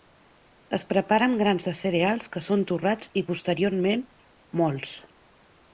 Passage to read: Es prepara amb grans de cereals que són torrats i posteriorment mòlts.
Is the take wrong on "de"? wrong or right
right